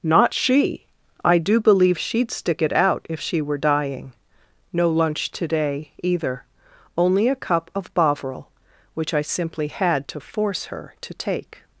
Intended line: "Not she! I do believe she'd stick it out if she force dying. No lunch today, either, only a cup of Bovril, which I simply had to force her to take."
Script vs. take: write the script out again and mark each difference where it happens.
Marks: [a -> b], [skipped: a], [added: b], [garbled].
"Not she! I do believe she'd stick it out if she [force -> were] dying. No lunch today, either, only a cup of Bovril, which I simply had to force her to take."